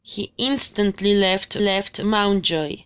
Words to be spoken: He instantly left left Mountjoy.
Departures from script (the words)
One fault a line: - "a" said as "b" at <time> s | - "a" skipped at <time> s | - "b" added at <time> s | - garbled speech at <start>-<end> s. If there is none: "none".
none